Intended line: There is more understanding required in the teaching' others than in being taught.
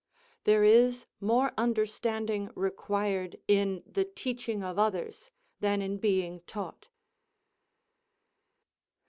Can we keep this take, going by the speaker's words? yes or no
no